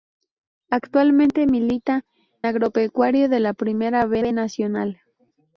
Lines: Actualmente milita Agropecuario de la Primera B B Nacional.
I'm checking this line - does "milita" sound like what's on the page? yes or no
yes